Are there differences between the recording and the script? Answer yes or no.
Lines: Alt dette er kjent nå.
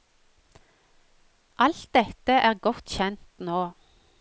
yes